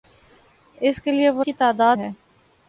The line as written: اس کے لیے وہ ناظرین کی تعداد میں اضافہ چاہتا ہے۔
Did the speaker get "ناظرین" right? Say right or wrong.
wrong